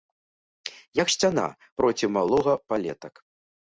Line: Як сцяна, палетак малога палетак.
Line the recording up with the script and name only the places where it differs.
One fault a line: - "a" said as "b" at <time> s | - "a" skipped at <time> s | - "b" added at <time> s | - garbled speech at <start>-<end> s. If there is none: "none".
- "палетак" said as "проці" at 1.8 s